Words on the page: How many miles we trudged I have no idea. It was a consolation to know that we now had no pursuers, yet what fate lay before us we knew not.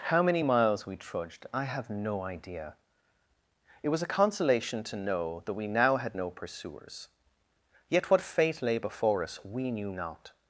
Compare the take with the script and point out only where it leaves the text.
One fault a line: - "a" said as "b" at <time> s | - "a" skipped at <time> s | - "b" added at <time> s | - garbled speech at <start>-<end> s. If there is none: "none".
none